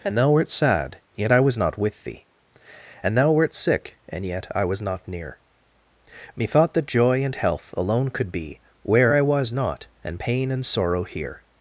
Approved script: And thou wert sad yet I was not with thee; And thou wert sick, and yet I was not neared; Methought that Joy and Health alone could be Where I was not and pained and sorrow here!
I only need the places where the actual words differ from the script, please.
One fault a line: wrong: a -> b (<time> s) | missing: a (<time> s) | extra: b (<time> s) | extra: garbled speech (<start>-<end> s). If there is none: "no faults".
wrong: neared -> near (5.1 s)
wrong: pained -> pain (10.2 s)